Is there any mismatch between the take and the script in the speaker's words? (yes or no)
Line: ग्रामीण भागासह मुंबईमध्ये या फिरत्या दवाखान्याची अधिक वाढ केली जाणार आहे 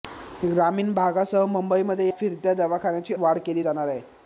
yes